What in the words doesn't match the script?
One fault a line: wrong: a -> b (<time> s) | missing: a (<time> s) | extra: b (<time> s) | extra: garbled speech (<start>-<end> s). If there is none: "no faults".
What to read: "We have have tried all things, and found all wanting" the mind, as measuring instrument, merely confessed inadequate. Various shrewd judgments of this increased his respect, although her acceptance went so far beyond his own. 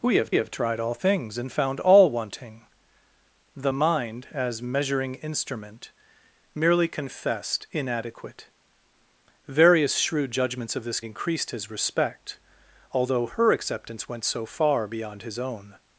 no faults